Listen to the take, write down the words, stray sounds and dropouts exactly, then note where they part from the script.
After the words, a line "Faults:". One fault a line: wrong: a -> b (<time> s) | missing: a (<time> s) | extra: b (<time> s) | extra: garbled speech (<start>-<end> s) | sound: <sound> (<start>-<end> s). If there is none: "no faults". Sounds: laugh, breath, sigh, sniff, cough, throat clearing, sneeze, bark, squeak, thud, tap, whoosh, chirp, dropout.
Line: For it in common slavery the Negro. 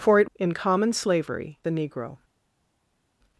For it in common slavery the Negro.
Faults:
no faults